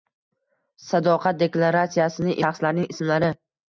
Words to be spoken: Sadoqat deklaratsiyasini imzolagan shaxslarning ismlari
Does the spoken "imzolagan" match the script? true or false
false